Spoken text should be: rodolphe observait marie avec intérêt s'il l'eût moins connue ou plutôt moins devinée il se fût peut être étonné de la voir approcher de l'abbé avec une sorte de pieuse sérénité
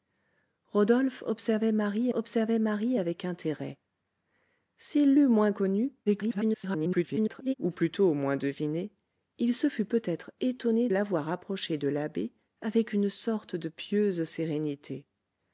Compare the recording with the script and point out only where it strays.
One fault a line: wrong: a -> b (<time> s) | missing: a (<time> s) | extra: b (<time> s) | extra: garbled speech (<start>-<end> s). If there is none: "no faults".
extra: observait marie (2.1 s)
extra: garbled speech (6.1-7.5 s)
missing: de (10.9 s)